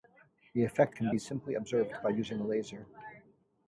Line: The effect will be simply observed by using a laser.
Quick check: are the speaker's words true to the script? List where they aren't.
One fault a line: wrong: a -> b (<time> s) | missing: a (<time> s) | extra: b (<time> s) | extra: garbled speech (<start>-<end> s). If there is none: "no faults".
wrong: will -> can (0.9 s)